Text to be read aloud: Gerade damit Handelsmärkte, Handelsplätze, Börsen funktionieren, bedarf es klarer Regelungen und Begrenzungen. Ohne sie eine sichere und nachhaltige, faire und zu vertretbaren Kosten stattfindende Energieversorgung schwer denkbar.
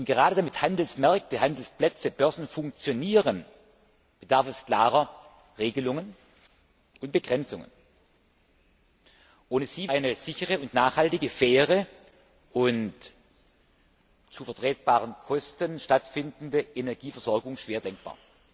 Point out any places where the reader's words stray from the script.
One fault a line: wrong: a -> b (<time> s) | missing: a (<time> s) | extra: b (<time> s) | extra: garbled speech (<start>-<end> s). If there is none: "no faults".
no faults